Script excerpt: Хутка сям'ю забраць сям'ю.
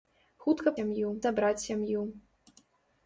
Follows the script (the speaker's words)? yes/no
yes